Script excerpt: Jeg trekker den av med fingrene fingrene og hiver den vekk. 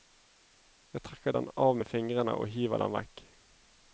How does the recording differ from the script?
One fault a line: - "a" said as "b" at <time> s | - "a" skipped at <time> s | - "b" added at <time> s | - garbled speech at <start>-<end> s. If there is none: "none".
- "fingrene" skipped at 2.4 s